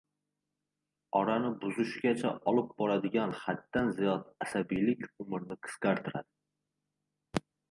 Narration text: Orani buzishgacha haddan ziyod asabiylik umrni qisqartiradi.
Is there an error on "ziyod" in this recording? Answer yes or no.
no